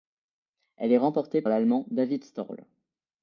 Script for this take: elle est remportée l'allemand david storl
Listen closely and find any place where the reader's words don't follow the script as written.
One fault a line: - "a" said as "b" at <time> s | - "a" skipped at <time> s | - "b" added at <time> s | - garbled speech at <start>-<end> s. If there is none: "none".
none